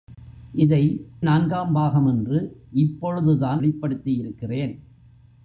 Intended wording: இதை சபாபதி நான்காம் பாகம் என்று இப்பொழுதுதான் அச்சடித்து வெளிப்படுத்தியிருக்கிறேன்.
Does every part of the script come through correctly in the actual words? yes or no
no